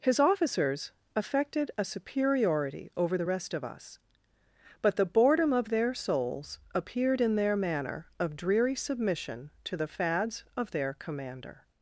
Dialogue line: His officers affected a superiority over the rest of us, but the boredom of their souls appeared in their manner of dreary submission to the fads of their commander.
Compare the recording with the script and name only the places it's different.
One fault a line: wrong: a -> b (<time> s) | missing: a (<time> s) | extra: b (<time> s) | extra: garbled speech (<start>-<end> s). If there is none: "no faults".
no faults